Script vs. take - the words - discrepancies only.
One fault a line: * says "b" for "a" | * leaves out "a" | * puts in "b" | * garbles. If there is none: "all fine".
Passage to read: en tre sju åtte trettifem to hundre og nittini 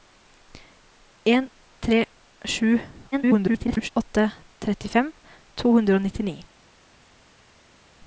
* garbles